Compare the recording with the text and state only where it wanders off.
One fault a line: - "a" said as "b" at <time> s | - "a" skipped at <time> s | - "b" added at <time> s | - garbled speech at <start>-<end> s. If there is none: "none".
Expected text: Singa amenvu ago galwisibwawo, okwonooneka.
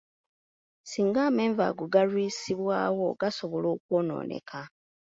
- "gasobola" added at 3.2 s